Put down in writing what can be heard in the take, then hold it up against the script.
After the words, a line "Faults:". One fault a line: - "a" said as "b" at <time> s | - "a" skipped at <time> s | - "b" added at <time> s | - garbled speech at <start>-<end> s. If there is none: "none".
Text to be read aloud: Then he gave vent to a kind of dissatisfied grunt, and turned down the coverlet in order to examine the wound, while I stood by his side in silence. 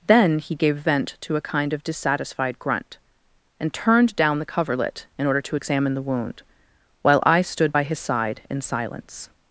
Then he gave vent to a kind of dissatisfied grunt, and turned down the coverlet in order to examine the wound, while I stood by his side in silence.
Faults:
none